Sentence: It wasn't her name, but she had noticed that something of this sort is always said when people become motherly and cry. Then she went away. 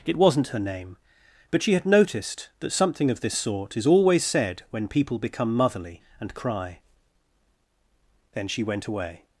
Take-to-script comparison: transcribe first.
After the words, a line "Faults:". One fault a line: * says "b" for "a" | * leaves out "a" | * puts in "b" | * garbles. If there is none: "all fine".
It wasn't her name, but she had noticed that something of this sort is always said when people become motherly and cry. Then she went away.
Faults:
all fine